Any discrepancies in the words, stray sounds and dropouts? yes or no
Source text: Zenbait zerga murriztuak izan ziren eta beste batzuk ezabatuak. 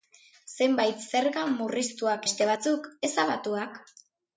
yes